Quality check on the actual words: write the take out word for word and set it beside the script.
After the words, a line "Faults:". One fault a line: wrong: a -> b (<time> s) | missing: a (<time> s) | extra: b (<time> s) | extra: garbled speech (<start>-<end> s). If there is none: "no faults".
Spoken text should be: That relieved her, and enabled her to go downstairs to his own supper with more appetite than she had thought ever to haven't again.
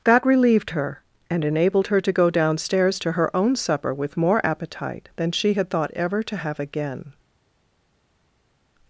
That relieved her, and enabled her to go downstairs to her own supper with more appetite than she had thought ever to have again.
Faults:
wrong: his -> her (3.1 s)
wrong: haven't -> have (6.4 s)